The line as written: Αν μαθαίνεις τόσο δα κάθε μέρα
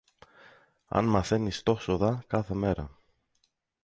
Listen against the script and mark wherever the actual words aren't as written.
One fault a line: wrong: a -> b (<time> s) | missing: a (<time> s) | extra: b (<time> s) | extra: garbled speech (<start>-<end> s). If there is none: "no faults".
no faults